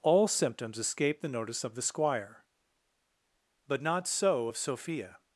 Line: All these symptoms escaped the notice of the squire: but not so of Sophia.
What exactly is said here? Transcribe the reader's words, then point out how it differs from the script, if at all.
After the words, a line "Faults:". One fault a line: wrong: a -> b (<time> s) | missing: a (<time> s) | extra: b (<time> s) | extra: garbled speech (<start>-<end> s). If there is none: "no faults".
All symptoms escaped the notice of the squire: but not so of Sophia.
Faults:
missing: these (0.3 s)